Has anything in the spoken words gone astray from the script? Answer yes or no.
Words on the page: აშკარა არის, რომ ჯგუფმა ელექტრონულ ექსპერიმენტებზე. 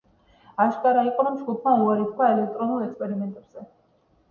yes